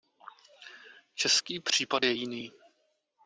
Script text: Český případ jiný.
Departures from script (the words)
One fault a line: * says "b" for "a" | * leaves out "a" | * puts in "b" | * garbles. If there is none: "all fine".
* puts in "je"